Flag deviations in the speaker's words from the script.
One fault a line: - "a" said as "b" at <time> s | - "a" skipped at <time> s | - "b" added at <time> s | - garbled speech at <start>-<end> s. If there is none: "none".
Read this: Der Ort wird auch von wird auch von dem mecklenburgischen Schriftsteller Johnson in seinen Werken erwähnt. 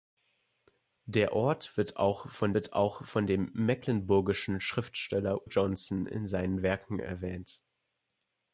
none